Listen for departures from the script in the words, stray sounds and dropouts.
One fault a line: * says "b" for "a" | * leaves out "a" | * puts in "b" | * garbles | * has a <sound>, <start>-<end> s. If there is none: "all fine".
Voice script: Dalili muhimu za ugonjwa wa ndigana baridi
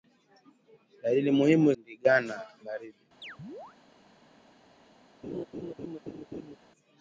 * leaves out "za ugonjwa wa"
* has a chirp, 3.2-3.8 s
* has a laugh, 5.2-6.6 s